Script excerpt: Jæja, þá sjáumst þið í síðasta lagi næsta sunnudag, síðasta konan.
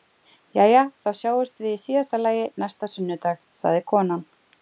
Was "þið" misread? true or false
true